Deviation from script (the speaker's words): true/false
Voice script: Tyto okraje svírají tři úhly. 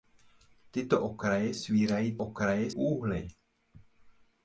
true